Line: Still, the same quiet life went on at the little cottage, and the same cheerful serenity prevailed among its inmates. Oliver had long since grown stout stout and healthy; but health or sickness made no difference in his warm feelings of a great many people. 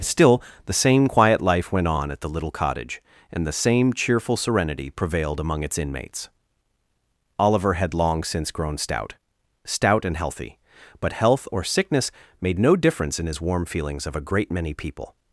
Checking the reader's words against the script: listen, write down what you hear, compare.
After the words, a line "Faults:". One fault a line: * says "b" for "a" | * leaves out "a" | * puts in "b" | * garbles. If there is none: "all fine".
Still, the same quiet life went on at the little cottage, and the same cheerful serenity prevailed among its inmates. Oliver had long since grown stout stout and healthy; but health or sickness made no difference in his warm feelings of a great many people.
Faults:
all fine